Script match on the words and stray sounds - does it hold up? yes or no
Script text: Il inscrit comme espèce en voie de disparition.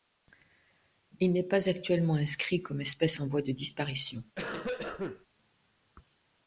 no